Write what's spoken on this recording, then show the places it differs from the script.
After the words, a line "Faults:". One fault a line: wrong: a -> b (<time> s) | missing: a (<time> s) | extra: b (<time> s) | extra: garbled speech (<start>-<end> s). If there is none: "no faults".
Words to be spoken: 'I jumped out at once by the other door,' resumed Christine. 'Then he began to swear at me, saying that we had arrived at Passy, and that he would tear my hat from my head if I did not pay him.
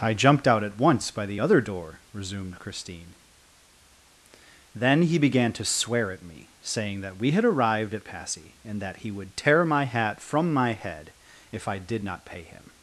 'I jumped out at once by the other door,' resumed Christine. 'Then he began to swear at me, saying that we had arrived at Passy, and that he would tear my hat from my head if I did not pay him.
Faults:
no faults